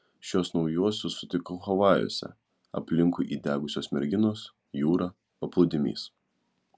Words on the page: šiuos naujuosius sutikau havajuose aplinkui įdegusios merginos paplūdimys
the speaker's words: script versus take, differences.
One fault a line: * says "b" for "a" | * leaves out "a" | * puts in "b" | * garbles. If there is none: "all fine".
* puts in "jūra"